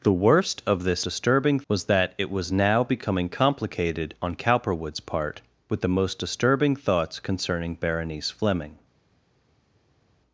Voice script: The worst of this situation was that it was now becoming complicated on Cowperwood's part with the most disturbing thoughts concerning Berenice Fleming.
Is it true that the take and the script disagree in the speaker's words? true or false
true